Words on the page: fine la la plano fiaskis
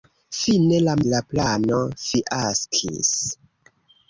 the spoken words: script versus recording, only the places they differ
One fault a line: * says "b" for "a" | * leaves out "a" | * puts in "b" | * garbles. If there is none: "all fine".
all fine